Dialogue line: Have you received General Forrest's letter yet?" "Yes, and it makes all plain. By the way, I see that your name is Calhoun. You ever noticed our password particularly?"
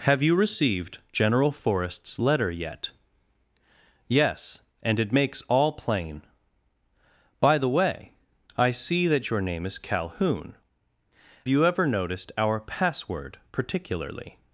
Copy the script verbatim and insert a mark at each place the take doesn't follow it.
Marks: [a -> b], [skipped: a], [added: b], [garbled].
Have you received General Forrest's letter yet?" "Yes, and it makes all plain. By the way, I see that your name is Calhoun. You ever noticed our password particularly?"